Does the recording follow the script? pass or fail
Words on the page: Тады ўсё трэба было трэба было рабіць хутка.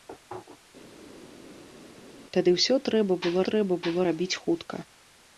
pass